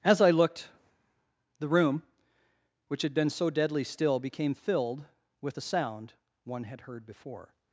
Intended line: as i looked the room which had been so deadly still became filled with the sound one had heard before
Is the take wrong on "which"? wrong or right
right